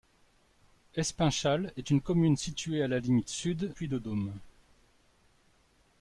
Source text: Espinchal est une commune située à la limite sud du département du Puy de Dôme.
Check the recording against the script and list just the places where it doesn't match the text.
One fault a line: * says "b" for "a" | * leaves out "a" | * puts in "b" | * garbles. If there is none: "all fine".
* leaves out "du département du"